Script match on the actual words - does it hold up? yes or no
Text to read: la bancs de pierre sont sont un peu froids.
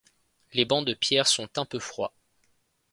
no